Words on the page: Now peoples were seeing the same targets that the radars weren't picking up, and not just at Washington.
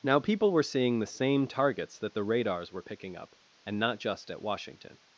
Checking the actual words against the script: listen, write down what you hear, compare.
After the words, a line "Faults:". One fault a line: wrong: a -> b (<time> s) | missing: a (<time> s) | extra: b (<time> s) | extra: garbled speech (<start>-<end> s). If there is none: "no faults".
Now people were seeing the same targets that the radars were picking up, and not just at Washington.
Faults:
wrong: peoples -> people (0.2 s)
wrong: weren't -> were (2.7 s)